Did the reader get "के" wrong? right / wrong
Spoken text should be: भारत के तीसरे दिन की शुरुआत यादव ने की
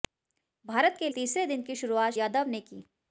right